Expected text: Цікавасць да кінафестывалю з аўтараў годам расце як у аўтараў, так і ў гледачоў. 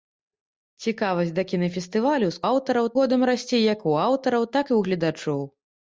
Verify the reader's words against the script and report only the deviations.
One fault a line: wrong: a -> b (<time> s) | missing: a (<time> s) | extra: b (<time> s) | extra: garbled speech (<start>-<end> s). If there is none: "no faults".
no faults